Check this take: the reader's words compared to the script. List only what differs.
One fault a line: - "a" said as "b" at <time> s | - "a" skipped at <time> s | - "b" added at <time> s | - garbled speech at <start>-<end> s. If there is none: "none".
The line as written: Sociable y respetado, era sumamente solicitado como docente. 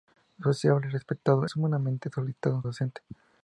- "era" skipped at 1.5 s
- "como" skipped at 2.6 s